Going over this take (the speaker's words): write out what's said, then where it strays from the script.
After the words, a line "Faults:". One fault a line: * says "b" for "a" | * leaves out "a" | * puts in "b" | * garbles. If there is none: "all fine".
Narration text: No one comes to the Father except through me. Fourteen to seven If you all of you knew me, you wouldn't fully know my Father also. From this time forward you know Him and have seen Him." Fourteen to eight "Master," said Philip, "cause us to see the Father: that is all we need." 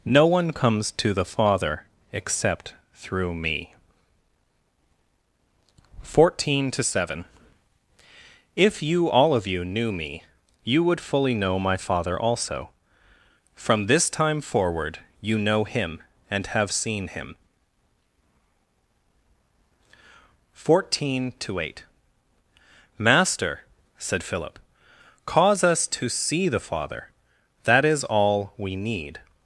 No one comes to the Father except through me. Fourteen to seven If you all of you knew me, you would fully know my Father also. From this time forward you know Him and have seen Him." Fourteen to eight "Master," said Philip, "cause us to see the Father: that is all we need."
Faults:
* says "would" for "wouldn't"